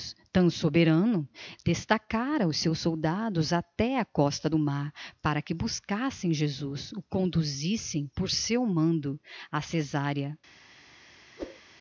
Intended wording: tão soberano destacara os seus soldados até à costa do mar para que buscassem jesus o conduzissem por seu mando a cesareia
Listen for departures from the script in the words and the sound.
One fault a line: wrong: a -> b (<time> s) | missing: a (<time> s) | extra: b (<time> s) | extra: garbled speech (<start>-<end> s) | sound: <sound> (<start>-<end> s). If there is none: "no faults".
sound: whoosh (11.4-11.6 s)